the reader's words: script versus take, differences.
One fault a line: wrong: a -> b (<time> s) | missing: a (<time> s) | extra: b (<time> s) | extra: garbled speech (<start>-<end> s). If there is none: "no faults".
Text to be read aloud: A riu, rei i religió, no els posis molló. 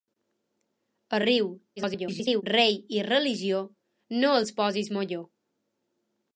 extra: garbled speech (1.8-2.4 s)